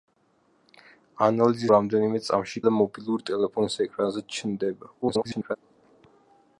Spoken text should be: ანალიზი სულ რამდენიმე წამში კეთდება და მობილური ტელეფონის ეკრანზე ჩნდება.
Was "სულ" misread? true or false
true